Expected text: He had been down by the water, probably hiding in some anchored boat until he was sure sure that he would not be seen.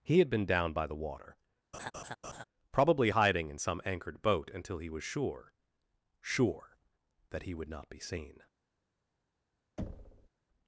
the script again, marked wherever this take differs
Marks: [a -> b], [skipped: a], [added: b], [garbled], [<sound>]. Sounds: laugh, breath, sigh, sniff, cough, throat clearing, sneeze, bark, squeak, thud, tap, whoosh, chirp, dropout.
He had been down by the water, [laugh] probably hiding in some anchored boat until he was sure sure that he would not be seen. [thud]